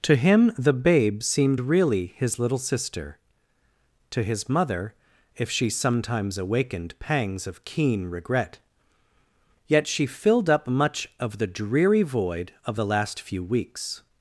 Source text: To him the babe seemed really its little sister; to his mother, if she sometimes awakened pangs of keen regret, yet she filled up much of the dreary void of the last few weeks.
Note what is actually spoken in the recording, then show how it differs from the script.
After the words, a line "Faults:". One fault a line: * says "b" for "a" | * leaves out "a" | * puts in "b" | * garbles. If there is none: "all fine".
To him the babe seemed really his little sister; to his mother, if she sometimes awakened pangs of keen regret, yet she filled up much of the dreary void of the last few weeks.
Faults:
* says "his" for "its"